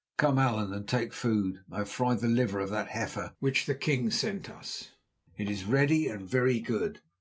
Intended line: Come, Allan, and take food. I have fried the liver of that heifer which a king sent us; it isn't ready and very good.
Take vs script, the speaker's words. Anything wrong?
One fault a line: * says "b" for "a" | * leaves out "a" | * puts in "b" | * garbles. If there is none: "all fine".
* says "the" for "a"
* says "is" for "isn't"